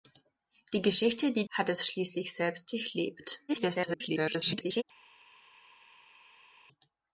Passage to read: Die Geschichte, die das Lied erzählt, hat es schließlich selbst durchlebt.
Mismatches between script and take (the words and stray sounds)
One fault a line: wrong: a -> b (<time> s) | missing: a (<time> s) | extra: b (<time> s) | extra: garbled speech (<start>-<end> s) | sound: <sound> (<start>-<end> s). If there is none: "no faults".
missing: das Lied erzählt (1.4 s)
extra: garbled speech (3.5-4.8 s)